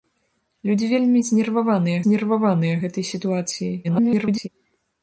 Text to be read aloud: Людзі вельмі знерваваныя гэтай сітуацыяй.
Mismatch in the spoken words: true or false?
true